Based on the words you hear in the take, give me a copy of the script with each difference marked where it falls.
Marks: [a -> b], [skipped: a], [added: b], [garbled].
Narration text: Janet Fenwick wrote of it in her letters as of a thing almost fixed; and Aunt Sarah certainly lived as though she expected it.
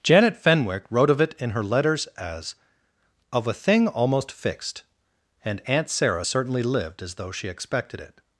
Janet Fenwick wrote of it in her letters as of a thing almost fixed; and Aunt Sarah certainly lived as though she expected it.